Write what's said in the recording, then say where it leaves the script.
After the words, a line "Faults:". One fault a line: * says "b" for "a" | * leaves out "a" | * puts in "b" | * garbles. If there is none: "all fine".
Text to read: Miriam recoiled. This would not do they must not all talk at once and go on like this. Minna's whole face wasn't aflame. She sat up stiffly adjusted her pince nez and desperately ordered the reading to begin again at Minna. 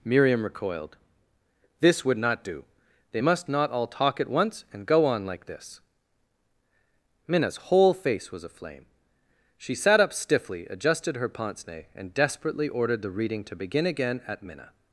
Miriam recoiled. This would not do they must not all talk at once and go on like this. Minna's whole face was aflame. She sat up stiffly adjusted her pince nez and desperately ordered the reading to begin again at Minna.
Faults:
* says "was" for "wasn't"